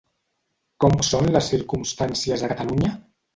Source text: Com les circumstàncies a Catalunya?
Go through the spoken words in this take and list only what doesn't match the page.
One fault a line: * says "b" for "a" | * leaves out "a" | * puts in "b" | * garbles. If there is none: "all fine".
* puts in "són"